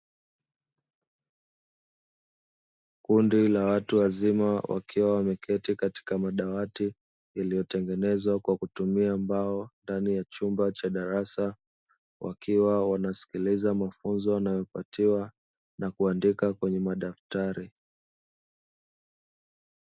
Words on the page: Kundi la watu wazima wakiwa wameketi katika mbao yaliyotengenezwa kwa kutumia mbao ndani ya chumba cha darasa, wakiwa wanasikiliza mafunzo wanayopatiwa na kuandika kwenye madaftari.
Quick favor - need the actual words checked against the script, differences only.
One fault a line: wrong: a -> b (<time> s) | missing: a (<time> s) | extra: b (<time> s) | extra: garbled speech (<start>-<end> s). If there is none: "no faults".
wrong: mbao -> madawati (6.2 s)